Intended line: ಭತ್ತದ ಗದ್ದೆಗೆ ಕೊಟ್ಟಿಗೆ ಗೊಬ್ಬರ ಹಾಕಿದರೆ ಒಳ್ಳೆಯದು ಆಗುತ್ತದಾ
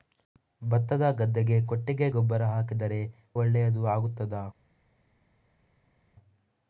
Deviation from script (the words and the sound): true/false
false